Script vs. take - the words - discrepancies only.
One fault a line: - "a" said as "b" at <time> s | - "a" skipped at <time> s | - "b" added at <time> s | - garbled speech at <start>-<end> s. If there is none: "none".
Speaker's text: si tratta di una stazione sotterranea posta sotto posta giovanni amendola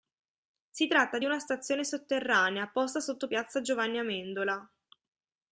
- "posta" said as "piazza" at 3.3 s